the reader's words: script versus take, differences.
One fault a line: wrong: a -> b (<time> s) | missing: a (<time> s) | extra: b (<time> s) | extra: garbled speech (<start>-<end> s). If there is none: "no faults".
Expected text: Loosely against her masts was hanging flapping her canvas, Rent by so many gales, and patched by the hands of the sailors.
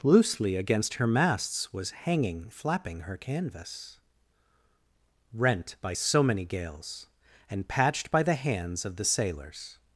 no faults